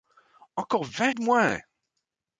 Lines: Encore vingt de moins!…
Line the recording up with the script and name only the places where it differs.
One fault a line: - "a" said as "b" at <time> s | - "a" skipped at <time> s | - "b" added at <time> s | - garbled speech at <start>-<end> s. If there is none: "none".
none